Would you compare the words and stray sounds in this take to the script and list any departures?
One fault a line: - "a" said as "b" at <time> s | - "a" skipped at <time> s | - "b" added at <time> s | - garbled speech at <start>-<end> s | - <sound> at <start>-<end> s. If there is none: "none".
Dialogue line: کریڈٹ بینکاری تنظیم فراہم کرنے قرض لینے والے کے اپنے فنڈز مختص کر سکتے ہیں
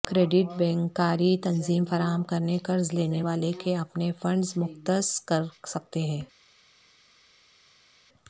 none